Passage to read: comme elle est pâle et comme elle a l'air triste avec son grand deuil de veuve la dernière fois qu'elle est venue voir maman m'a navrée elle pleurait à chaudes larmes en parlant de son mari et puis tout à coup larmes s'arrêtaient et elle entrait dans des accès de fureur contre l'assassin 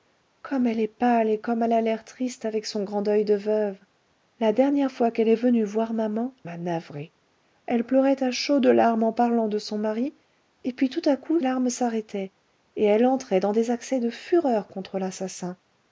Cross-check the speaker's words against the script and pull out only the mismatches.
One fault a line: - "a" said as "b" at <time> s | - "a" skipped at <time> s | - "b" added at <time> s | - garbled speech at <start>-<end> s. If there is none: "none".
none